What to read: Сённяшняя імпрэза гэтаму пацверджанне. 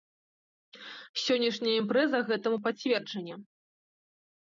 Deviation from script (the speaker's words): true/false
false